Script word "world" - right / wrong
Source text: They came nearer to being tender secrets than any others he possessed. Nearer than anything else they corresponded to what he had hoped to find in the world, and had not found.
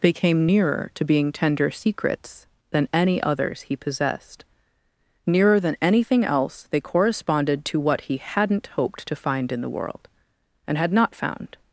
right